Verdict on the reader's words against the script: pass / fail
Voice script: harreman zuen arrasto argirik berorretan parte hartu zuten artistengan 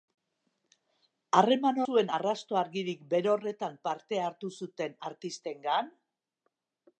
pass